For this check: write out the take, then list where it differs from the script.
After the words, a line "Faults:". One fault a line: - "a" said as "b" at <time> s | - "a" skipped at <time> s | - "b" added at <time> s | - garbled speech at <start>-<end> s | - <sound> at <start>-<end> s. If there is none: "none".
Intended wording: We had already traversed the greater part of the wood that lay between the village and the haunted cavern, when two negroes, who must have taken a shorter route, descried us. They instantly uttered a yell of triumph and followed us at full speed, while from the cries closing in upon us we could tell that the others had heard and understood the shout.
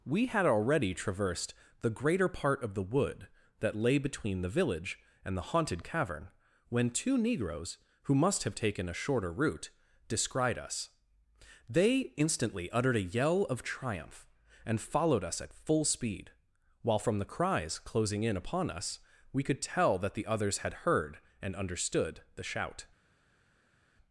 We had already traversed the greater part of the wood that lay between the village and the haunted cavern, when two negroes, who must have taken a shorter route, descried us. They instantly uttered a yell of triumph and followed us at full speed, while from the cries closing in upon us we could tell that the others had heard and understood the shout.
Faults:
none